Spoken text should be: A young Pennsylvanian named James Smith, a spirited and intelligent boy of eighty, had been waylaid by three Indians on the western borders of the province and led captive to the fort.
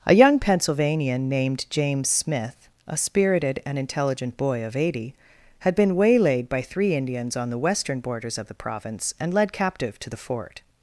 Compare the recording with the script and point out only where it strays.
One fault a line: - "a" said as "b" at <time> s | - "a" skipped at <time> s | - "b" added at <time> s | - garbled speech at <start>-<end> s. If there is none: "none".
none